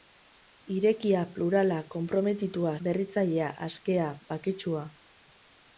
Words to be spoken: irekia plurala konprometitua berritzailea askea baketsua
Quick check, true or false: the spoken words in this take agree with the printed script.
true